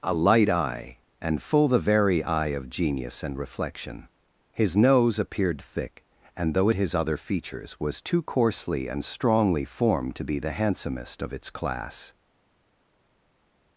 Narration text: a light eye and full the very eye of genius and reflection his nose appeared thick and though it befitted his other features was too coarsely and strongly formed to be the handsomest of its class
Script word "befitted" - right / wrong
wrong